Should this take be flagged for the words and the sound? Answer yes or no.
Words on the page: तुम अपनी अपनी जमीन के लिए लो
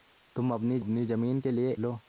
no